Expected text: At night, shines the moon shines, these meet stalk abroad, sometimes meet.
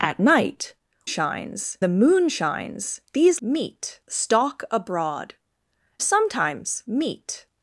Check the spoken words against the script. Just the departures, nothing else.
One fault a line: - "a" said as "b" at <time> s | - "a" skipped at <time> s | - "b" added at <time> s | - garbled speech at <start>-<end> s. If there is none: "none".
none